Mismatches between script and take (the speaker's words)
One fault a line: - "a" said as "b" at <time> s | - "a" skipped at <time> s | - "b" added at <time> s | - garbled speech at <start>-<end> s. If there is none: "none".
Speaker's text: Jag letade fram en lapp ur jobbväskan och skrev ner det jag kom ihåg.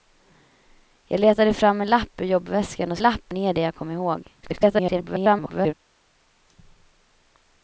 - "skrev" said as "lapp" at 3.0 s
- garbled speech at 4.4-5.7 s